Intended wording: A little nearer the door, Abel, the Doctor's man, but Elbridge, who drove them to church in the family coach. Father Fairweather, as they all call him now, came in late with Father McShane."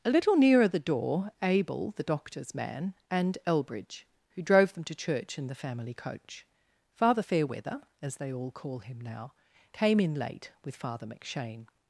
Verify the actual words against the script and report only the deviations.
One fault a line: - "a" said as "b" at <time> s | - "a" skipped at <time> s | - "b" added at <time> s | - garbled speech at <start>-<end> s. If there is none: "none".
- "but" said as "and" at 3.1 s